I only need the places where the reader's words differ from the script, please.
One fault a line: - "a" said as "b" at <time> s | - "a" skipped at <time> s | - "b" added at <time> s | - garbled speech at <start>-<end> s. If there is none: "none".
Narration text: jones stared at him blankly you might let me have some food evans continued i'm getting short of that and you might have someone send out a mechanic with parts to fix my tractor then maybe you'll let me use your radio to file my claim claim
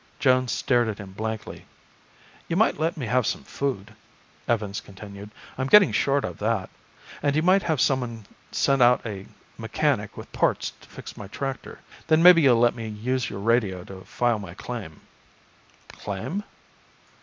none